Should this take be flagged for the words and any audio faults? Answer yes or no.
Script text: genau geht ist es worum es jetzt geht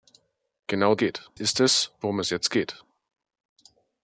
no